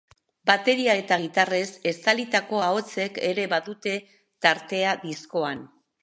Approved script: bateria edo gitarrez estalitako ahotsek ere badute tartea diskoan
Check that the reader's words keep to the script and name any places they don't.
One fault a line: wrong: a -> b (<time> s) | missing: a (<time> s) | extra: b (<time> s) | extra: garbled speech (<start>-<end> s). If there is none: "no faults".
wrong: edo -> eta (1.0 s)